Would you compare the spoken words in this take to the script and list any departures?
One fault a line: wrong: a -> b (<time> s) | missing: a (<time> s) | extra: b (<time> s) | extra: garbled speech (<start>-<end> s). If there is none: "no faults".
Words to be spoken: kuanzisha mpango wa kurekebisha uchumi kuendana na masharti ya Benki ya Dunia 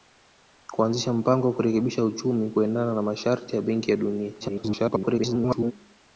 extra: garbled speech (4.4-5.7 s)